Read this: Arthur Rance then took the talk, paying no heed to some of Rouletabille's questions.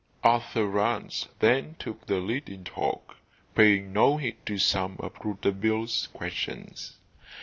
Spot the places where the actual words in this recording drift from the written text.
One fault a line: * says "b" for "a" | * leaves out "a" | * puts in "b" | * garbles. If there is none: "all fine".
* puts in "lead in"